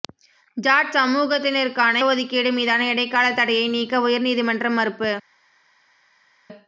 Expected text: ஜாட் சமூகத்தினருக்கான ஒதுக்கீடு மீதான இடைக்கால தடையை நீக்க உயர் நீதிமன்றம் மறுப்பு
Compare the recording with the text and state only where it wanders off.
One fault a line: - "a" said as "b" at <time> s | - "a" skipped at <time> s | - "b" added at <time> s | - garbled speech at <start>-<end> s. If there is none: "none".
none